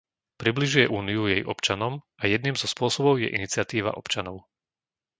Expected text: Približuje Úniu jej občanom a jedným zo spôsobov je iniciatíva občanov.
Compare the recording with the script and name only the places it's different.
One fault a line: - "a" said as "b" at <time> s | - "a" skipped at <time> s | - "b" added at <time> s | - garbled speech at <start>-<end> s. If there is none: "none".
none